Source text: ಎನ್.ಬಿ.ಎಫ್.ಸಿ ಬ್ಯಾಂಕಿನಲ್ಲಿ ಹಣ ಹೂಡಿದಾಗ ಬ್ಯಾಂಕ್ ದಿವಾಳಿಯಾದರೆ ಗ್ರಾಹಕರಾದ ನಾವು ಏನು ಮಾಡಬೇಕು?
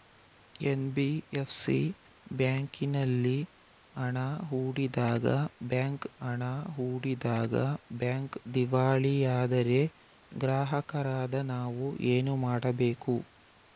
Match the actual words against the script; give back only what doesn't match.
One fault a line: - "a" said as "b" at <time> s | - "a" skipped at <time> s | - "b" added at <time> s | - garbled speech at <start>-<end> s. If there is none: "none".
- "ಹಣ ಹೂಡಿದಾಗ ಬ್ಯಾಂಕ್" added at 6.2 s